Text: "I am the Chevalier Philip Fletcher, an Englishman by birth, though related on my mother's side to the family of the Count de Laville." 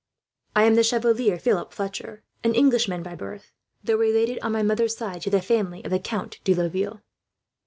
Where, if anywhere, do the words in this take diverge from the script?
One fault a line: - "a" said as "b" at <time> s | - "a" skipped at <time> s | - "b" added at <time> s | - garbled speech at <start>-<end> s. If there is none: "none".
none